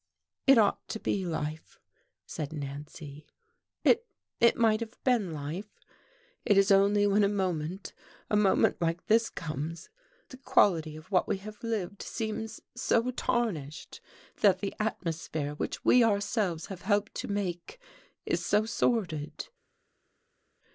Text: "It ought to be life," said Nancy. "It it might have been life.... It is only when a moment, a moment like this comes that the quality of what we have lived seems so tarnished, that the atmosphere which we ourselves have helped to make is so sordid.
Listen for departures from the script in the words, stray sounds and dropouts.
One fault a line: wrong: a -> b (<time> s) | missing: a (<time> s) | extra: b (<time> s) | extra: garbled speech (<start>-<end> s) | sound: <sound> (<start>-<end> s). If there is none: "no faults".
missing: that (9.9 s)